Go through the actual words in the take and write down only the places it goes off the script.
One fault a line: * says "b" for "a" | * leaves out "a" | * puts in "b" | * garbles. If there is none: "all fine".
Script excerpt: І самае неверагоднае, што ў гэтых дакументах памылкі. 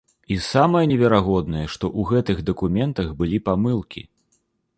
* puts in "былі"